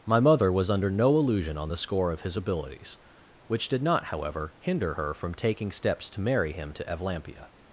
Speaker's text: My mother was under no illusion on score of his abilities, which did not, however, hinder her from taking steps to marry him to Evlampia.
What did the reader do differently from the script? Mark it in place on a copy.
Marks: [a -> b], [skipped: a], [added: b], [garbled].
My mother was under no illusion on [added: the] score of his abilities, which did not, however, hinder her from taking steps to marry him to Evlampia.